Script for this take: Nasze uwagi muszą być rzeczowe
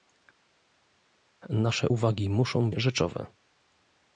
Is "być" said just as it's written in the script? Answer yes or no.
no